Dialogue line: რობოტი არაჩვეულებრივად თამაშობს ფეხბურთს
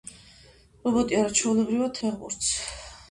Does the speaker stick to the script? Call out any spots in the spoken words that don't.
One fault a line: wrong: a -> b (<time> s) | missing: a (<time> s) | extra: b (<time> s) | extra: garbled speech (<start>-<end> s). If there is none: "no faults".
missing: თამაშობს (1.9 s)